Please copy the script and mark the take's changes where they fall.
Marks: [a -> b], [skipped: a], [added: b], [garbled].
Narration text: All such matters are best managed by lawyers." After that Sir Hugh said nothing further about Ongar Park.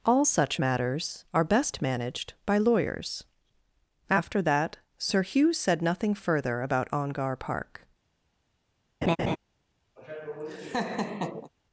All such matters are best managed by lawyers." After that Sir Hugh said nothing further about Ongar Park.